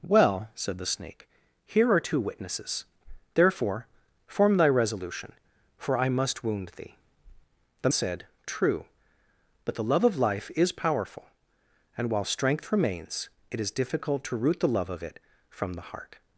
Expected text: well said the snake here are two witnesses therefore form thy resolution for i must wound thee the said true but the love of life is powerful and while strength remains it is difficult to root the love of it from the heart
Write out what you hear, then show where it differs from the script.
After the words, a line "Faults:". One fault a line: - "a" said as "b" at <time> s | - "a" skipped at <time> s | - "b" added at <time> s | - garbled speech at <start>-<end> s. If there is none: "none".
well said the snake here are two witnesses therefore form thy resolution for i must wound thee the said true but the love of life is powerful and while strength remains it is difficult to root the love of it from the heart
Faults:
none